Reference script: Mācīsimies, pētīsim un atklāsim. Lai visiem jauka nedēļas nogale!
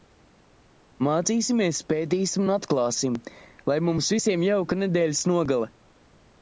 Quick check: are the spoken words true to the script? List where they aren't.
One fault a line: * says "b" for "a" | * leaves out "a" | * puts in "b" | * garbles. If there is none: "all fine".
* puts in "mums"